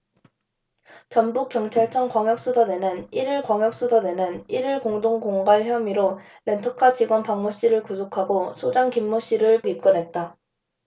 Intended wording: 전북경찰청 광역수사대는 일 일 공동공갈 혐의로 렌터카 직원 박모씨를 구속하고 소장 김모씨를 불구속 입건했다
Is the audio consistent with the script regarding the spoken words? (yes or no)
no